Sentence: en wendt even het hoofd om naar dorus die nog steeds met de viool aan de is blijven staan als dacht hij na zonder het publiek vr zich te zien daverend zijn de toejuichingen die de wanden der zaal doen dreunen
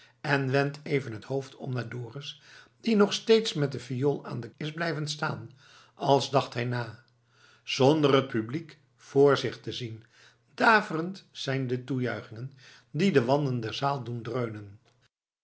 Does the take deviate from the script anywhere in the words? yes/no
no